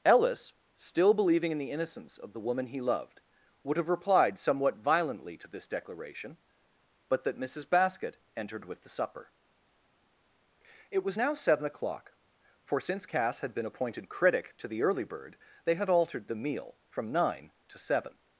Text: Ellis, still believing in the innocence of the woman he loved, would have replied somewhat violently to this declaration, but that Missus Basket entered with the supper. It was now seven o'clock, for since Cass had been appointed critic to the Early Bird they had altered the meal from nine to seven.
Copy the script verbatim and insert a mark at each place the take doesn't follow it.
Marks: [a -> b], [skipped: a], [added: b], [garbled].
Ellis, still believing in the innocence of the woman he loved, would have replied somewhat violently to this declaration, but that Missus Basket entered with the supper. It was now seven o'clock, for since Cass had been appointed critic to the Early Bird they had altered the meal from nine to seven.